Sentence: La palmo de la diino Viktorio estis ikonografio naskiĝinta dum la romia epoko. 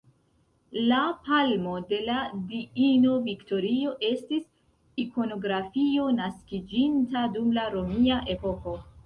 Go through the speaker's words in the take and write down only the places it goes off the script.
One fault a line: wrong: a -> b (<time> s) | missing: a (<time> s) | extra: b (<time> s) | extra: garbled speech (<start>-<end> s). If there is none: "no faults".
no faults